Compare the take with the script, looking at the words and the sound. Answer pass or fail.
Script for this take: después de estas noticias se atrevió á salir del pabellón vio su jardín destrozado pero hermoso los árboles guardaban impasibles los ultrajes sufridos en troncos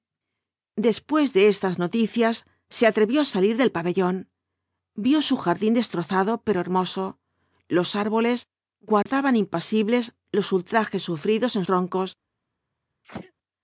fail